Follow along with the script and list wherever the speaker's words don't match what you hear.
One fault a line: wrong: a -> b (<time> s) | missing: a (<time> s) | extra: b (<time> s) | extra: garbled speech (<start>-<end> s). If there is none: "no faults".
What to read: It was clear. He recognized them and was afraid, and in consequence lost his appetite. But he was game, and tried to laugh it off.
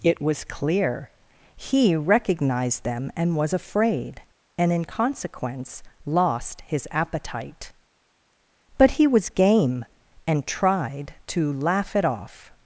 no faults